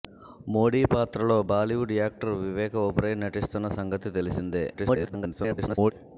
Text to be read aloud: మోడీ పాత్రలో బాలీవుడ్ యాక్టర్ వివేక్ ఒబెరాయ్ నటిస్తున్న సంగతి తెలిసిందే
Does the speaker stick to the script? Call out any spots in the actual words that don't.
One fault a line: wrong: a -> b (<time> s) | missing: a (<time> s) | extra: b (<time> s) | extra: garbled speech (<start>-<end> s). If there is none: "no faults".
extra: garbled speech (4.7-5.9 s)